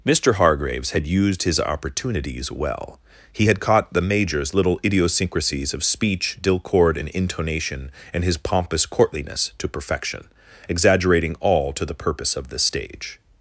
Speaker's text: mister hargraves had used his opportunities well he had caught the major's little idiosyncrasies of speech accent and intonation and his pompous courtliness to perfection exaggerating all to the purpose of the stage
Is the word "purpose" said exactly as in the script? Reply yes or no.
yes